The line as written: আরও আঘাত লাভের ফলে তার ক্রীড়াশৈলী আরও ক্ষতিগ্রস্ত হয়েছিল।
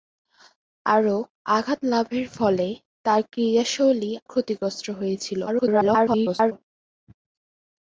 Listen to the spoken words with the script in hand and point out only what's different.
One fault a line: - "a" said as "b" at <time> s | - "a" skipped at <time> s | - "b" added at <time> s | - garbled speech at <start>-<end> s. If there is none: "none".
- "আরও" skipped at 4.1 s
- garbled speech at 5.5-6.5 s